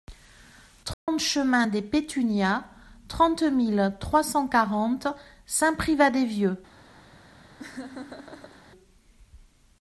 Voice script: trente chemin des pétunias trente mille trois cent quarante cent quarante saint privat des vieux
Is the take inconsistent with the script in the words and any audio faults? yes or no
yes